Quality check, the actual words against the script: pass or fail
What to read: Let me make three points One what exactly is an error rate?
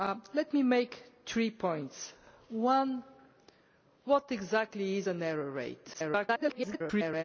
fail